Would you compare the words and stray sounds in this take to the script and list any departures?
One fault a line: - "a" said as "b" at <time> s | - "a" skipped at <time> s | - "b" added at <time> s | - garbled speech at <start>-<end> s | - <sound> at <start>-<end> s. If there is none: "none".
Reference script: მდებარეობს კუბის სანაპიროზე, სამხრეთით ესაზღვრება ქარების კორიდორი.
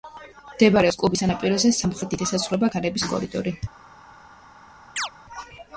- chirp at 5.0-5.1 s